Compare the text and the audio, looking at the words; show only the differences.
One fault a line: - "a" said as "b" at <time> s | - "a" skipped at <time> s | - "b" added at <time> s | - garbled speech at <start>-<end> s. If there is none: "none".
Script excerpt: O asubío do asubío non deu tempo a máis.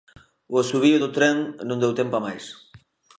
- "asubío" said as "tren" at 1.2 s